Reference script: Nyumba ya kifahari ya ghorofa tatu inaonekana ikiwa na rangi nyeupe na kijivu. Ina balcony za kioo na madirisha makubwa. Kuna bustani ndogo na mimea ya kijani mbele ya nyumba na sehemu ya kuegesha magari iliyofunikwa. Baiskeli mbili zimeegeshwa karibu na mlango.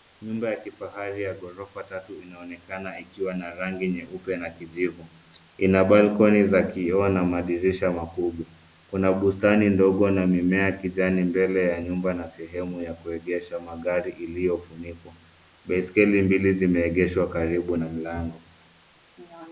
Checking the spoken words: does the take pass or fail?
pass